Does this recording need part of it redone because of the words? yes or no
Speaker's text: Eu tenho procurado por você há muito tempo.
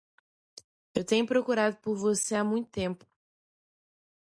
no